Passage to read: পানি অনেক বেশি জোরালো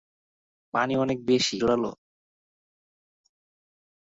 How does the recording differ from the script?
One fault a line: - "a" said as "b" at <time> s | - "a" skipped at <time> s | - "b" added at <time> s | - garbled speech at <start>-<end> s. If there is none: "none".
none